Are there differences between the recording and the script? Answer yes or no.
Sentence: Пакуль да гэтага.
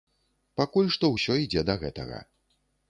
yes